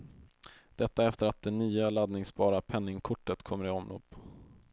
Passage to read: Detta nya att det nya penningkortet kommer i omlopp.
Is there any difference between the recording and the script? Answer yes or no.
yes